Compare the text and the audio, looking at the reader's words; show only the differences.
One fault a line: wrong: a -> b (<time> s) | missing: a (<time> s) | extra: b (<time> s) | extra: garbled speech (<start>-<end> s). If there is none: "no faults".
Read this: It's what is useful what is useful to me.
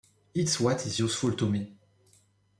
missing: what is useful (1.3 s)